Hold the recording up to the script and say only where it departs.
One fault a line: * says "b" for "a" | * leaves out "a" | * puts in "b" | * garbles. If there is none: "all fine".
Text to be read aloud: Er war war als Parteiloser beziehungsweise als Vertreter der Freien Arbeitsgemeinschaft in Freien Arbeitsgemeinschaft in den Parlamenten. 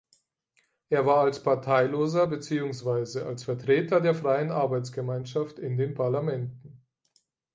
* leaves out "war"
* leaves out "Freien Arbeitsgemeinschaft in"